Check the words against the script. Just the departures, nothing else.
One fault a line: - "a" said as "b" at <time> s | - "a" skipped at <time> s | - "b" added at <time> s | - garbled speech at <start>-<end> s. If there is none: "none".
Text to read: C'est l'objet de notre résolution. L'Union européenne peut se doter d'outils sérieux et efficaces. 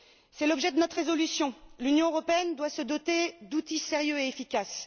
- "peut" said as "doit" at 2.5 s